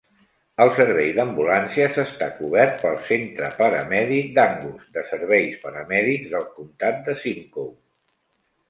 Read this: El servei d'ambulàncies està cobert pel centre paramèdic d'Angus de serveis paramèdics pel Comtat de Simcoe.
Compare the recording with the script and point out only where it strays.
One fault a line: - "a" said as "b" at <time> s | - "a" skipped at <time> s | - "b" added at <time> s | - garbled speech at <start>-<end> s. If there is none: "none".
- "pel" said as "del" at 6.4 s